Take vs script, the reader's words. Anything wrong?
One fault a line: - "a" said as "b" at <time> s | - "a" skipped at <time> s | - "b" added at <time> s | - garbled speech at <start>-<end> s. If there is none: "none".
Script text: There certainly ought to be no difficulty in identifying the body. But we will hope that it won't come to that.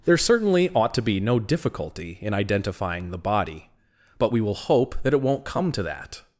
none